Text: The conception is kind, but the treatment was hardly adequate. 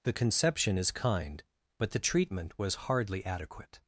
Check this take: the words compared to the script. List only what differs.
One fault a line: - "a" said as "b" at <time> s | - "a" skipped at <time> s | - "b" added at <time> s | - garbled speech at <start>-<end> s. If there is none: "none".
none